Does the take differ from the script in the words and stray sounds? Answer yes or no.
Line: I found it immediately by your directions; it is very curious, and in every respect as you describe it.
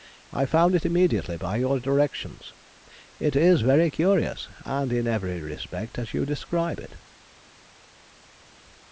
no